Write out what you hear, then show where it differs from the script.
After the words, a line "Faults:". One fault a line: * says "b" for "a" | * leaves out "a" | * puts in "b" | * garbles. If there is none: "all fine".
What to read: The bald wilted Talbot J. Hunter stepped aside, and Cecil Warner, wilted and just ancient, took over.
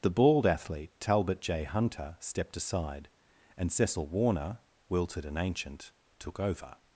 The bald athlete Talbot J. Hunter stepped aside, and Cecil Warner, wilted and ancient, took over.
Faults:
* says "athlete" for "wilted"
* leaves out "just"